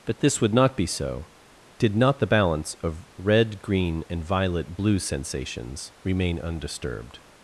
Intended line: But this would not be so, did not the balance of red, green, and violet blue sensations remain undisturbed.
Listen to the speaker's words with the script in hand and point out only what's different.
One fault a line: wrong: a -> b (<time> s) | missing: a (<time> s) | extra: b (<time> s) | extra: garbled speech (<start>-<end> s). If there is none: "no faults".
no faults